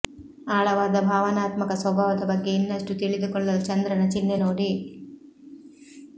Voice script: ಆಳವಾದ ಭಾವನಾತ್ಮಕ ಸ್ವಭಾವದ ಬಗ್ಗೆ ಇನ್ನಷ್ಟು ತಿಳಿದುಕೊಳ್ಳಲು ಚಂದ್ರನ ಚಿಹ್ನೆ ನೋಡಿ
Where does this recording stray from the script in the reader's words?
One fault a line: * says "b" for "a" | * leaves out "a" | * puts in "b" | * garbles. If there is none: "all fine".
all fine